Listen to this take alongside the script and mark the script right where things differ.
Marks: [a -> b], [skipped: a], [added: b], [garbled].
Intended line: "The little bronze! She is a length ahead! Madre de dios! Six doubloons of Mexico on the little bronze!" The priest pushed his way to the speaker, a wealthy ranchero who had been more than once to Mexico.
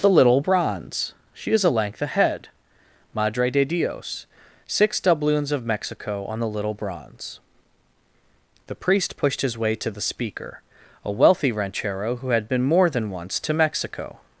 "The little bronze! She is a length ahead! Madre de dios! Six doubloons of Mexico on the little bronze!" The priest pushed his way to the speaker, a wealthy ranchero who had been more than once to Mexico.